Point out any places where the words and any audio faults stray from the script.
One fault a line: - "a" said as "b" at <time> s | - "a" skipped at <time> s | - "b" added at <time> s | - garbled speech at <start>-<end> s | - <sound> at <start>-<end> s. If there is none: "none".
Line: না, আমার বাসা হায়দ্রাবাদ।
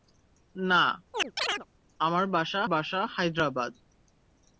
- chirp at 1.1-1.7 s
- "বাসা" added at 2.6 s